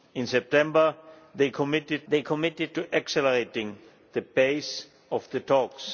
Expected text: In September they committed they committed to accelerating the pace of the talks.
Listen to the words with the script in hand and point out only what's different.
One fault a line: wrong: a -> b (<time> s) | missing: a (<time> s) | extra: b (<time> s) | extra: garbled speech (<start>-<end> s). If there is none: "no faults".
no faults